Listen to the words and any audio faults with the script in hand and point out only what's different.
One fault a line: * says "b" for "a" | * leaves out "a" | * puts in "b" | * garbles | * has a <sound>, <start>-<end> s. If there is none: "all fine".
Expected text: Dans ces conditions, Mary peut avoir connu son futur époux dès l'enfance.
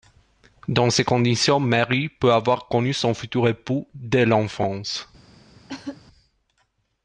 * has a cough, 5.7-6.0 s